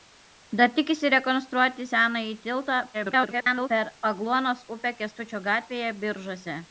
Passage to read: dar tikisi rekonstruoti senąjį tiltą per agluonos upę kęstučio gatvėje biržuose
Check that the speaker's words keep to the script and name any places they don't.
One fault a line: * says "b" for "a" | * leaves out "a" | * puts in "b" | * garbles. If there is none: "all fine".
* garbles